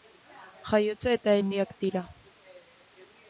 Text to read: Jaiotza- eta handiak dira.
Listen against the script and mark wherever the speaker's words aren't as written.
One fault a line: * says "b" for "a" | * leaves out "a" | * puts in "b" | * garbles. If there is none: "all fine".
all fine